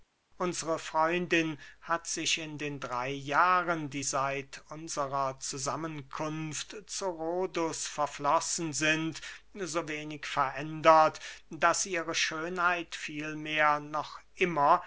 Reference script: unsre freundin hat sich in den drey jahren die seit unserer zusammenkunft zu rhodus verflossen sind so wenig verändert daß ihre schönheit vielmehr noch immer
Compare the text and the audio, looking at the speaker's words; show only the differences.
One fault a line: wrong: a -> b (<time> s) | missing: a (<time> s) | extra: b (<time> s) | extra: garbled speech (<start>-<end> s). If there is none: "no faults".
no faults